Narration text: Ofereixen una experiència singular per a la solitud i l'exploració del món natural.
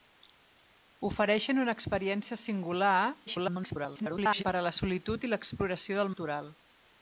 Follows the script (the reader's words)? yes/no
no